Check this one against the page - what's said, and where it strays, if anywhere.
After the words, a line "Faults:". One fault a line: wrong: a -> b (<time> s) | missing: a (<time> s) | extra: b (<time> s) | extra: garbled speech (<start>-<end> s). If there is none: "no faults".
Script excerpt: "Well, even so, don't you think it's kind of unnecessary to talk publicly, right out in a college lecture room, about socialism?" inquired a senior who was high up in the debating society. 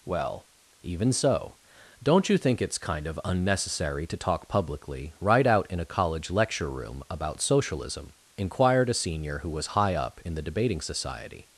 "Well, even so, don't you think it's kind of unnecessary to talk publicly, right out in a college lecture room, about socialism?" inquired a senior who was high up in the debating society.
Faults:
no faults